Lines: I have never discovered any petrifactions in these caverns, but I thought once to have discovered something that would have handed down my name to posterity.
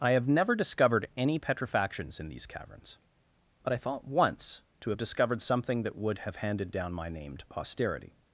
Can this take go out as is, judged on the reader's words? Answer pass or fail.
pass